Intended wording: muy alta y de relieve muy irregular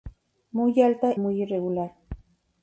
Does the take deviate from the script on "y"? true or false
true